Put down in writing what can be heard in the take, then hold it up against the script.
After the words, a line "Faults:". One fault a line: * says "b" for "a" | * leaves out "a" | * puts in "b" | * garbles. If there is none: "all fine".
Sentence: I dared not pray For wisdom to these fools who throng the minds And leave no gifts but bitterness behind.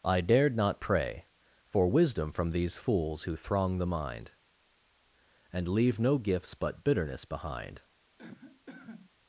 I dared not pray For wisdom from these fools who throng the mind And leave no gifts but bitterness behind.
Faults:
* says "from" for "to"
* says "mind" for "minds"